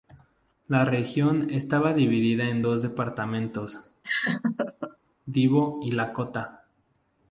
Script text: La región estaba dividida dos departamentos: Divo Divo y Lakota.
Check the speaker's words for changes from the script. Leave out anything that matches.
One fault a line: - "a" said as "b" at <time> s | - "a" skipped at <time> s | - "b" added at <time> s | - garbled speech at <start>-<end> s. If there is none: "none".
- "en" added at 2.5 s
- "Divo" skipped at 5.8 s